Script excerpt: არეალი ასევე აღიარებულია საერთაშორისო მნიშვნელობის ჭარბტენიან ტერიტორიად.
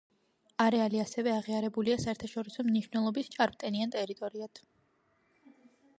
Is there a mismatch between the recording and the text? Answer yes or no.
no